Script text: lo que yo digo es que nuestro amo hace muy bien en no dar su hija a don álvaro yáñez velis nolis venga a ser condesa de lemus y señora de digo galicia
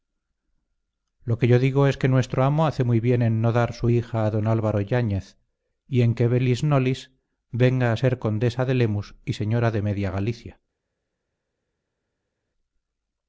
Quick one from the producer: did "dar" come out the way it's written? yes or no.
yes